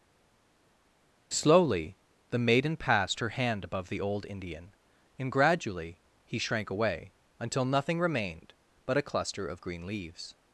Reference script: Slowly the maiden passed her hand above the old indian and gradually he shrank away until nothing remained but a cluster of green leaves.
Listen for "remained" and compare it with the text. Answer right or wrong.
right